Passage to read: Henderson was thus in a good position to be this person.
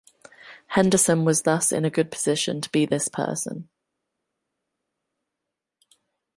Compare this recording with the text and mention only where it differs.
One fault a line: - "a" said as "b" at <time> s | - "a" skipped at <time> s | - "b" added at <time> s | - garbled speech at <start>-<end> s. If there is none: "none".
none